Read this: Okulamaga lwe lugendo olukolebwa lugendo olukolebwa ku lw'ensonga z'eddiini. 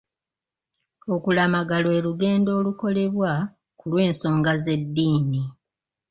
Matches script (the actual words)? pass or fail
fail